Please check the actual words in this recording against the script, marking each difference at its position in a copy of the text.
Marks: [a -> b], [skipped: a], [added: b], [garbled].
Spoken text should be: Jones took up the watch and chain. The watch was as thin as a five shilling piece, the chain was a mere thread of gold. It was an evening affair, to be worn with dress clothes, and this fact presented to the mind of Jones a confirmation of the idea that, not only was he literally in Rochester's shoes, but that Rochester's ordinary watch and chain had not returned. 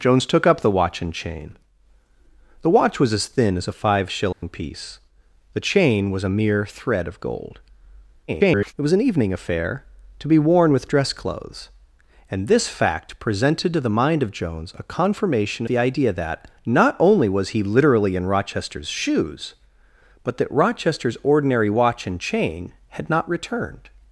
Jones took up the watch and chain. The watch was as thin as a five shilling piece, the chain was a mere thread of gold. [garbled] It was an evening affair, to be worn with dress clothes, and this fact presented to the mind of Jones a confirmation [skipped: of] the idea that, not only was he literally in Rochester's shoes, but that Rochester's ordinary watch and chain had not returned.